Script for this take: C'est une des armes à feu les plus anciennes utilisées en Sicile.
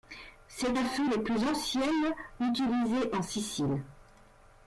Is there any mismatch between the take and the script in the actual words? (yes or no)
yes